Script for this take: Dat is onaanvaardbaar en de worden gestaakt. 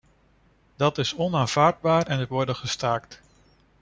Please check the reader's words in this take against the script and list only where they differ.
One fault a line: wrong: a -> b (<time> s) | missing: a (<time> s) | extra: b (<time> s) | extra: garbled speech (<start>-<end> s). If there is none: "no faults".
no faults